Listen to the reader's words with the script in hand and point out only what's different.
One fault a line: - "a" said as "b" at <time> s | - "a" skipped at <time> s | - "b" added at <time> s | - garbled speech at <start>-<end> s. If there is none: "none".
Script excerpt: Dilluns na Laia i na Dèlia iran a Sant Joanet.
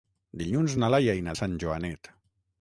- "Dèlia iran" skipped at 1.3 s